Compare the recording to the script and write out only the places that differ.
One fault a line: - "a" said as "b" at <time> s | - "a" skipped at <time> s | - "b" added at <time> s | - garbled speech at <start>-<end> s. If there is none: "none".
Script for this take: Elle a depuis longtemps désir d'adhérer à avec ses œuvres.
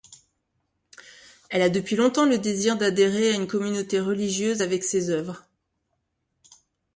- "le" added at 2.2 s
- "une communauté religieuse" added at 3.4 s